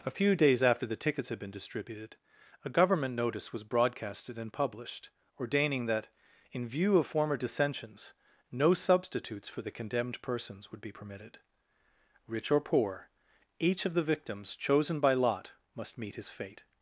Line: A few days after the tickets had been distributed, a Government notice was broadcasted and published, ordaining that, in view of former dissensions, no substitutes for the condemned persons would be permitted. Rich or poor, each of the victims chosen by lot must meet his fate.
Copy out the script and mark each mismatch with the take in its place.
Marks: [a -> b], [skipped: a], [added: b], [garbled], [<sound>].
A few days after the tickets had been distributed, a Government notice was broadcasted and published, ordaining that, in view of former dissensions, no substitutes for the condemned persons would be permitted. Rich or poor, each of the victims chosen by lot must meet his fate.